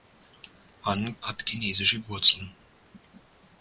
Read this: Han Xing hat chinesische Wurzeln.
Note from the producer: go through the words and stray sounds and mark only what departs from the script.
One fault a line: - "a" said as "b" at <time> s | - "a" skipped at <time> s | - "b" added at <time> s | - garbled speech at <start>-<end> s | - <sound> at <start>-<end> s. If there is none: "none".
- "Xing" skipped at 1.1 s